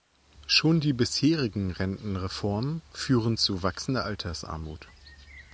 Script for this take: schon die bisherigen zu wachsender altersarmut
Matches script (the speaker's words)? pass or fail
fail